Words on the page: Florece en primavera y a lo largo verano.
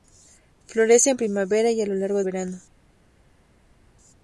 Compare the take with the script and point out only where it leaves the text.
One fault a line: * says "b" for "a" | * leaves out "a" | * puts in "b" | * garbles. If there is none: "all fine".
all fine